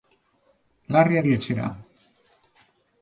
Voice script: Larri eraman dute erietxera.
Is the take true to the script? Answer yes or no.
no